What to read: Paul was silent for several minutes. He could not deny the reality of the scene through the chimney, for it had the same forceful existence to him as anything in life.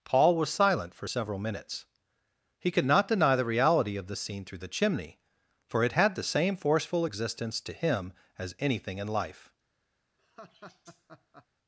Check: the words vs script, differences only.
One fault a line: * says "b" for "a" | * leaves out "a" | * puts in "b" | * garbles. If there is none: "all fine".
all fine